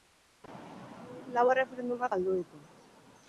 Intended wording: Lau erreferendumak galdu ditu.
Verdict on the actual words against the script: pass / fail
pass